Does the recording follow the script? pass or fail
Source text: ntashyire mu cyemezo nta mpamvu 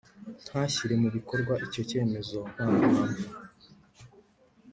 fail